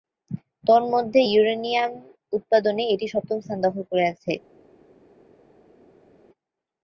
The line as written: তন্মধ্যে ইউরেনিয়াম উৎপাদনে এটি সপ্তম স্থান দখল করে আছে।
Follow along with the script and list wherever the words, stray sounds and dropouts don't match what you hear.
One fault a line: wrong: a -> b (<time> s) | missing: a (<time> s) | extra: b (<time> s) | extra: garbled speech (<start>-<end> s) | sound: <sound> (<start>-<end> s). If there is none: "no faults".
no faults